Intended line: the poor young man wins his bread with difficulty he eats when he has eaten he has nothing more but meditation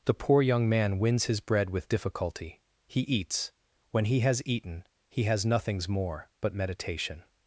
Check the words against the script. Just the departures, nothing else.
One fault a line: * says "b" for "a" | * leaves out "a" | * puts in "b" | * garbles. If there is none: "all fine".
* says "nothings" for "nothing"